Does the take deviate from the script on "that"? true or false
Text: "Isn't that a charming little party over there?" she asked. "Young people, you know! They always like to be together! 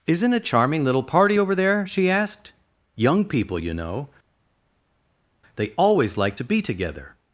true